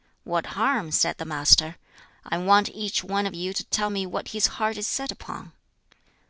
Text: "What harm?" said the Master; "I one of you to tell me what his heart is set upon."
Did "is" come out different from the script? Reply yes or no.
no